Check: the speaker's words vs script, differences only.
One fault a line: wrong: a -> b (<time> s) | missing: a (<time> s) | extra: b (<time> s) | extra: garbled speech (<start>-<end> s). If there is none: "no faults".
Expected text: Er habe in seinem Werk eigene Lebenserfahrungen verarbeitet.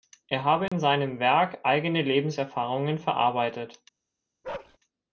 no faults